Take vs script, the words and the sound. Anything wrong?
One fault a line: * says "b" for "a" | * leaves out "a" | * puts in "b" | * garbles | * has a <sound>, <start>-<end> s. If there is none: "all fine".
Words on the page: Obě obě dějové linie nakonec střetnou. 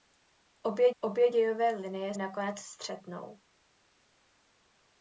all fine